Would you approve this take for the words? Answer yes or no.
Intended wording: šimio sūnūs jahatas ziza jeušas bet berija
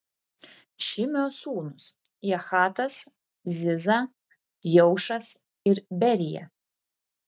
no